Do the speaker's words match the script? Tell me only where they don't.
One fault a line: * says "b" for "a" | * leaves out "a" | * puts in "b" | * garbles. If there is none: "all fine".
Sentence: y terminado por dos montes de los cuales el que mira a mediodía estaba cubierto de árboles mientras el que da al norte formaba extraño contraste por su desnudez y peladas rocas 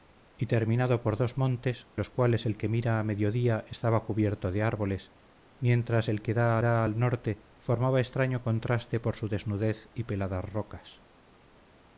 * leaves out "de"
* puts in "da"